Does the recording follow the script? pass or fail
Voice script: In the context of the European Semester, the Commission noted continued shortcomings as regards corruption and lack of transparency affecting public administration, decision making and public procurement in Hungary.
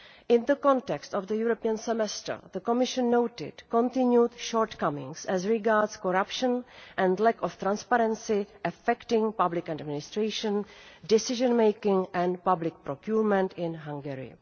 pass